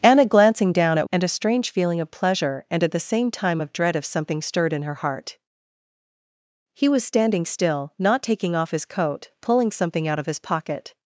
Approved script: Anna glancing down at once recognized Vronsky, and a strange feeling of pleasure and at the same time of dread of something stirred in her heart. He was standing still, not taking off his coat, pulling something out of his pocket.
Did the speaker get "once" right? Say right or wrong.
wrong